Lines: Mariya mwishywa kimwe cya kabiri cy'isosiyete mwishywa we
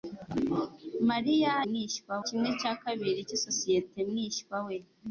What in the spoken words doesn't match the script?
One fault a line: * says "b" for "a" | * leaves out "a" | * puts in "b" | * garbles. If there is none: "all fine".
all fine